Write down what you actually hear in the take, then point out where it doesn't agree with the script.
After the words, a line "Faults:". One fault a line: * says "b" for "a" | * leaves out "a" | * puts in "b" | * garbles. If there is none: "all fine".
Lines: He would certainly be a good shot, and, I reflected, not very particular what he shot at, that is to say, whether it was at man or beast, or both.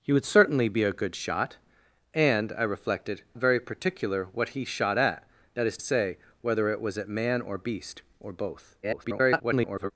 He would certainly be a good shot, and, I reflected, very particular what he shot at, that is say, whether it was at man or beast, or both. [garbled]
Faults:
* leaves out "not"
* leaves out "to"
* garbles